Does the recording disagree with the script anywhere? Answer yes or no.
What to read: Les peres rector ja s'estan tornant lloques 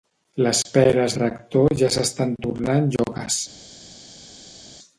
no